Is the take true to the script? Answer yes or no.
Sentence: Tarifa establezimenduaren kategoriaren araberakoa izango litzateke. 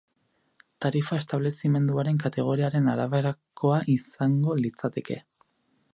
yes